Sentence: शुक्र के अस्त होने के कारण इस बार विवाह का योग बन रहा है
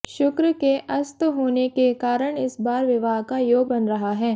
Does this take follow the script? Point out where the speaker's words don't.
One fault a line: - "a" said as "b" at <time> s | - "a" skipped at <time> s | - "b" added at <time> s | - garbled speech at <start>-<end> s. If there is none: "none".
none